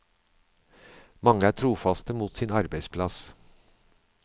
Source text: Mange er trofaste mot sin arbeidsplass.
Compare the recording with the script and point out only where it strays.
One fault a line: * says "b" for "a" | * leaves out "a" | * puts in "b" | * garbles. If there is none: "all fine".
all fine